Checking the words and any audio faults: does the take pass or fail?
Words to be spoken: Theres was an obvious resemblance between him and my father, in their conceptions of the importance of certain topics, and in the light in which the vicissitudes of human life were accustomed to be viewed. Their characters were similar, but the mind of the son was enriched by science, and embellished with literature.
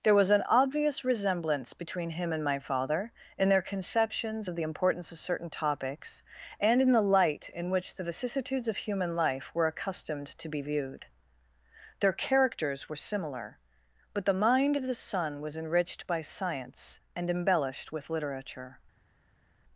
fail